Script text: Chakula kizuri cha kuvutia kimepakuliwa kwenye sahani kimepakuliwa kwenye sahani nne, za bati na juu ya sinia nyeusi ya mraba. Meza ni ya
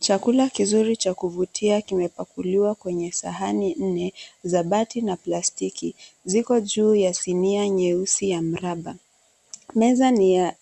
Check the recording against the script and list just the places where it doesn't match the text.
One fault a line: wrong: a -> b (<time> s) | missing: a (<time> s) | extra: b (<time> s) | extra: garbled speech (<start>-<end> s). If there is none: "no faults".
missing: kimepakuliwa kwenye sahani (3.7 s)
extra: plastiki ziko (5.2 s)